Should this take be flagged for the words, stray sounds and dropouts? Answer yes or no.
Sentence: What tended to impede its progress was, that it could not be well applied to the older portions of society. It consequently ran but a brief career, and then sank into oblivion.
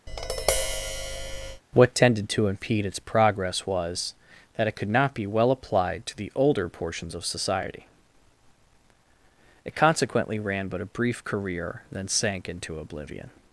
yes